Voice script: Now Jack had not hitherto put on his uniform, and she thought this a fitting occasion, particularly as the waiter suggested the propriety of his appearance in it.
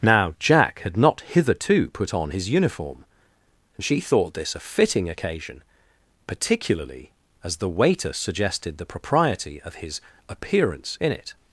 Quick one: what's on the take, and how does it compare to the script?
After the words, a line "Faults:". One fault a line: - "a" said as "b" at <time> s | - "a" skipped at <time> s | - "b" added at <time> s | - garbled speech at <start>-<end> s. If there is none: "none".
Now Jack had not hitherto put on his uniform, and she thought this a fitting occasion, particularly as the waiter suggested the propriety of his appearance in it.
Faults:
none